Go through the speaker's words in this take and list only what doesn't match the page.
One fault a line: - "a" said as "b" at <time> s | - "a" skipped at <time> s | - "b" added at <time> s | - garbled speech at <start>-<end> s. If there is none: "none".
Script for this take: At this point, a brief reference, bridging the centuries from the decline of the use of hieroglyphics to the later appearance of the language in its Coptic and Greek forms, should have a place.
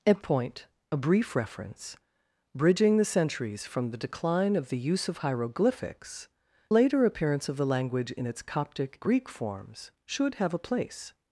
- "this" skipped at 0.2 s
- "to the" skipped at 6.3 s
- "and" skipped at 9.0 s